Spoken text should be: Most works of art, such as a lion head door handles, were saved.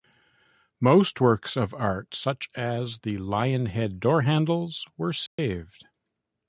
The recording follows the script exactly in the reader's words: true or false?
false